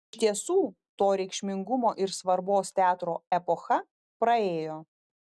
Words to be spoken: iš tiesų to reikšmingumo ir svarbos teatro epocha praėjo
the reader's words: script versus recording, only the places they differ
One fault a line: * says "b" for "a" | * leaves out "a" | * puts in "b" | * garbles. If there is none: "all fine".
all fine